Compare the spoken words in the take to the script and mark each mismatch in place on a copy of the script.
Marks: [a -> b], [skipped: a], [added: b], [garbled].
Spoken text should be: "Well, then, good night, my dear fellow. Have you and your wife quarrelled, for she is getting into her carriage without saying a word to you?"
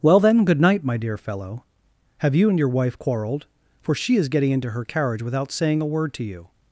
"Well, then, good night, my dear fellow. Have you and your wife quarrelled, for she is getting into her carriage without saying a word to you?"